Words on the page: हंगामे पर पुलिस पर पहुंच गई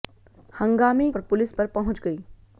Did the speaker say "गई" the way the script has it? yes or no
yes